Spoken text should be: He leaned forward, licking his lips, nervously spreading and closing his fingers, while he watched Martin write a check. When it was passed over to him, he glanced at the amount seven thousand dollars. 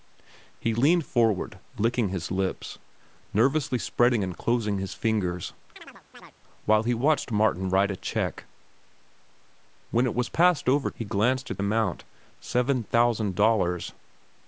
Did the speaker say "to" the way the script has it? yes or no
no